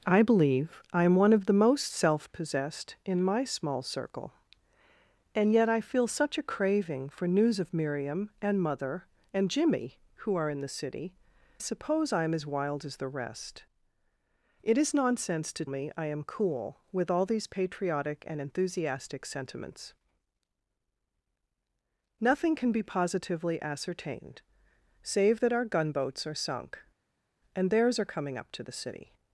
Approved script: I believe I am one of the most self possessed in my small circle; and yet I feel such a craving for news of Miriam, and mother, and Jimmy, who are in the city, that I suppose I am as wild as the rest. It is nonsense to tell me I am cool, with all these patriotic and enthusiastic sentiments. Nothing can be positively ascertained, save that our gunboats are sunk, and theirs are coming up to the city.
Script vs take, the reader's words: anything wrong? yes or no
yes